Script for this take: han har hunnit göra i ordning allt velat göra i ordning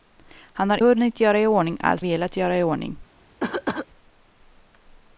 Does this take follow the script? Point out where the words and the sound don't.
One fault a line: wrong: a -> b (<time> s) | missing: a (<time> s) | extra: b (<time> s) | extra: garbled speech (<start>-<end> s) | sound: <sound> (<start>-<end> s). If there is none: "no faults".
sound: cough (3.4-3.9 s)